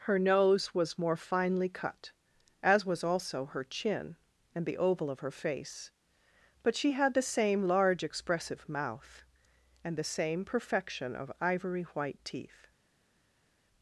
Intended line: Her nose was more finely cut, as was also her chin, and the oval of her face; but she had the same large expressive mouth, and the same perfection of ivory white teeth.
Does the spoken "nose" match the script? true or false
true